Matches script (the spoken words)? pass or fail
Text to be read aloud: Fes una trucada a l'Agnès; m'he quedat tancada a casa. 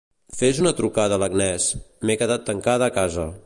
pass